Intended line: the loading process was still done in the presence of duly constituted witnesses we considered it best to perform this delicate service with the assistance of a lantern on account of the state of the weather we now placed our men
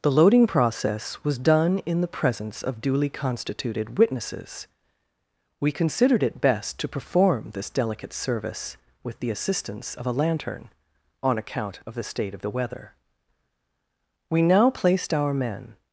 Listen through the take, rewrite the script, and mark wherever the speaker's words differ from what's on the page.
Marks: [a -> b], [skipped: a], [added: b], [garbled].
the loading process was [skipped: still] done in the presence of duly constituted witnesses we considered it best to perform this delicate service with the assistance of a lantern on account of the state of the weather we now placed our men